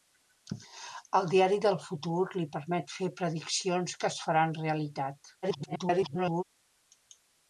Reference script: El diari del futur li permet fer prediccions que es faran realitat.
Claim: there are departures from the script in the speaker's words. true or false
true